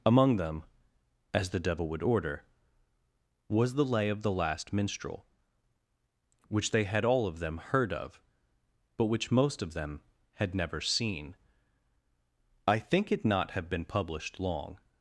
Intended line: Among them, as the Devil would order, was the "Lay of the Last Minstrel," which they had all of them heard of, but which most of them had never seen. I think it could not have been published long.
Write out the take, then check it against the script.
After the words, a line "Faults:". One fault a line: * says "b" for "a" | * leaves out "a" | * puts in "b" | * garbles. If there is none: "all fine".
Among them, as the Devil would order, was the "Lay of the Last Minstrel," which they had all of them heard of, but which most of them had never seen. I think it not have been published long.
Faults:
* leaves out "could"